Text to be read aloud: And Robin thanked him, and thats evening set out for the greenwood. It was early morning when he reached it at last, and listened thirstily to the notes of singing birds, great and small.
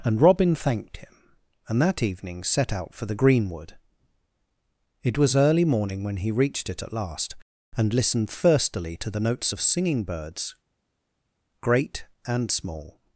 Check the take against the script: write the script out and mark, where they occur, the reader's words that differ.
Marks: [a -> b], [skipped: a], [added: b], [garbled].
And Robin thanked him, and [thats -> that] evening set out for the greenwood. It was early morning when he reached it at last, and listened thirstily to the notes of singing birds, great and small.